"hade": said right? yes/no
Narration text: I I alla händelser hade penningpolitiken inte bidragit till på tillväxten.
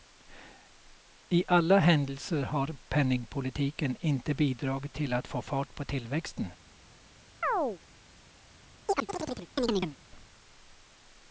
no